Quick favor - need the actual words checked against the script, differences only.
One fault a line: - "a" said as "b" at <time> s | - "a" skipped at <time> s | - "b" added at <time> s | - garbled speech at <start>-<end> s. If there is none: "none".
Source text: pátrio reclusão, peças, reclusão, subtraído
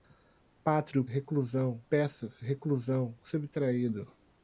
none